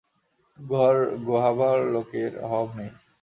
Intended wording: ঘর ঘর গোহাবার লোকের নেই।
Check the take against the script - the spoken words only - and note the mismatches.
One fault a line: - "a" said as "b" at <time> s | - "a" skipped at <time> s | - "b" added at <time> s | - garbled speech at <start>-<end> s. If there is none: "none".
- "ঘর" skipped at 0.9 s
- "অভাব" added at 2.5 s